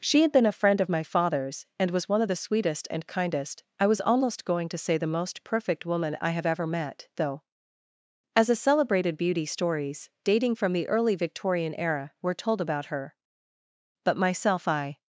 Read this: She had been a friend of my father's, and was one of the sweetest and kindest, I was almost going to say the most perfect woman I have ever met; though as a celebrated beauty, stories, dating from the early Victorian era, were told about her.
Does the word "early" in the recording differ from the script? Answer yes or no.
no